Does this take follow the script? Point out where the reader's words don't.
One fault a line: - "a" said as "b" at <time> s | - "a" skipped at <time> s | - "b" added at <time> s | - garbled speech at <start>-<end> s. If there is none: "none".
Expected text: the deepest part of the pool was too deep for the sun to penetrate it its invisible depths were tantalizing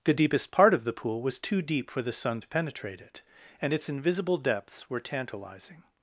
- "and" added at 3.6 s